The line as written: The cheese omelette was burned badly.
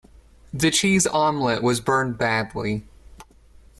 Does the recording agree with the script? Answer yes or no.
yes